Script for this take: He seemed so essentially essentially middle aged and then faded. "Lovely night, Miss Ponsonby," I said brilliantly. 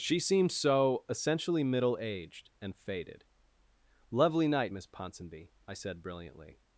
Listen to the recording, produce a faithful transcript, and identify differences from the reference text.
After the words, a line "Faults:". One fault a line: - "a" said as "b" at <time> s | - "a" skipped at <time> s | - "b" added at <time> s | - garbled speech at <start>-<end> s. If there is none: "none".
She seemed so essentially middle aged and faded. "Lovely night, Miss Ponsonby," I said brilliantly.
Faults:
- "He" said as "She" at 0.0 s
- "essentially" skipped at 1.6 s
- "then" skipped at 2.8 s